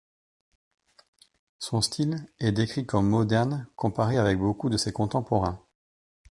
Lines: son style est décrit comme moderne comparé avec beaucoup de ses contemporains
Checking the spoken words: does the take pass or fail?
pass